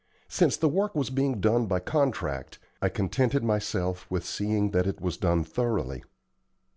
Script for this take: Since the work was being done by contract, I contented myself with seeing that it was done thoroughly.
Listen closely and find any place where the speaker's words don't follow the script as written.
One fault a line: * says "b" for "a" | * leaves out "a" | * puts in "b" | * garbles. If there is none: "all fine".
all fine